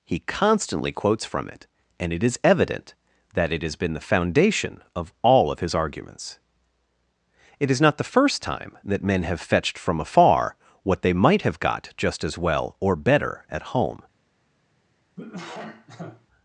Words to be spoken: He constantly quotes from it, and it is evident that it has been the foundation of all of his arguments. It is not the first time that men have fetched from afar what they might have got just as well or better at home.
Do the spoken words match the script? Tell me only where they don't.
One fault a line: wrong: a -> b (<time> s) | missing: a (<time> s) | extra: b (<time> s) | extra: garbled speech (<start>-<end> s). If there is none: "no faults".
no faults